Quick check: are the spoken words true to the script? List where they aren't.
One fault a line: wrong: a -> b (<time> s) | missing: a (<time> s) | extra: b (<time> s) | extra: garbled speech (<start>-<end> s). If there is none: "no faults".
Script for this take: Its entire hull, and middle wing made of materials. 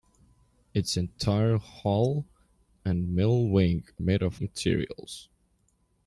no faults